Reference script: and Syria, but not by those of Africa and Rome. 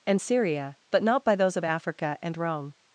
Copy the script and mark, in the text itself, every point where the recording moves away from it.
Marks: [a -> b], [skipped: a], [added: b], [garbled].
and Syria, but not by those of Africa and Rome.